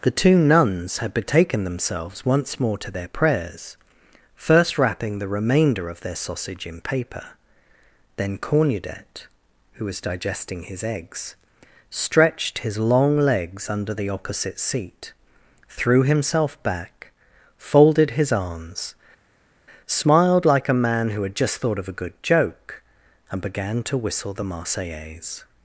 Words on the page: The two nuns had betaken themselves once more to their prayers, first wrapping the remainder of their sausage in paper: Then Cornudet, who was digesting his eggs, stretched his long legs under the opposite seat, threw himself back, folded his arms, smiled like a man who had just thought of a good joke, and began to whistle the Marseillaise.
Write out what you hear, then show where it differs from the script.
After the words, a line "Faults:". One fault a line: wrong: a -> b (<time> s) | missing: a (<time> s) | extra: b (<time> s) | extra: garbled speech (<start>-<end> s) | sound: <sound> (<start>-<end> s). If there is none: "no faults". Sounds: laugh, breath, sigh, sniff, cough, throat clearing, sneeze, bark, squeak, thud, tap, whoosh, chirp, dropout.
The two nuns had betaken themselves once more to their prayers, first wrapping the remainder of their sausage in paper: Then Cornudet, who was digesting his eggs, stretched his long legs under the opposite seat, threw himself back, folded his arms, smiled like a man who had just thought of a good joke, and began to whistle the Marseillaise.
Faults:
no faults